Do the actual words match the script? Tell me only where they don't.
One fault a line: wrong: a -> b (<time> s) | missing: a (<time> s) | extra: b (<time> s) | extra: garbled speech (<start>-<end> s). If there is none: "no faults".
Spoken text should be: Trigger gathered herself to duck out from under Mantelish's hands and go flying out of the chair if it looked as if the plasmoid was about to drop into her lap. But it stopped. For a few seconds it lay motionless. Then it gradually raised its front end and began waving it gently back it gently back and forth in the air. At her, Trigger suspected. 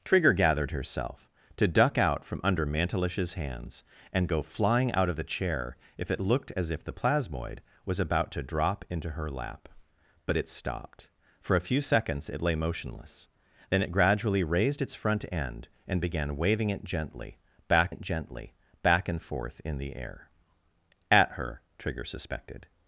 no faults